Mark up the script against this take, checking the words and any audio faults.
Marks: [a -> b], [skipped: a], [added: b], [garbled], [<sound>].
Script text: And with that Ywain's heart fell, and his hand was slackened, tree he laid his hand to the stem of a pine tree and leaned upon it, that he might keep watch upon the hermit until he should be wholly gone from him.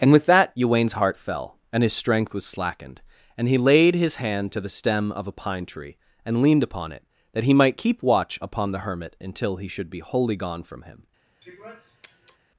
And with that Ywain's heart fell, and his [hand -> strength] was slackened, [tree -> and] he laid his hand to the stem of a pine tree and leaned upon it, that he might keep watch upon the hermit until he should be wholly gone from him. [sniff]